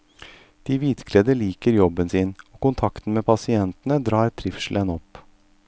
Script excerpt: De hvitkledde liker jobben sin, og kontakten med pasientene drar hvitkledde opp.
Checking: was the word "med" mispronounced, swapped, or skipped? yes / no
no